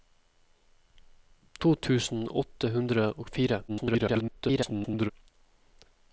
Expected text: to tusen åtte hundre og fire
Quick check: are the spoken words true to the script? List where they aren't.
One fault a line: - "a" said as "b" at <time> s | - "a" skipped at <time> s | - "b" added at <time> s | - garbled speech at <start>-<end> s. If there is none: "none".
- garbled speech at 3.7-5.1 s